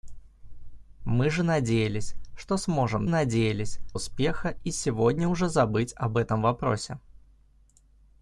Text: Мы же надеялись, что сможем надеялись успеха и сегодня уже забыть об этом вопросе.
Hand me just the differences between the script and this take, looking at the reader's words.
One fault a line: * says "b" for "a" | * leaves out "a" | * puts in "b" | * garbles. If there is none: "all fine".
all fine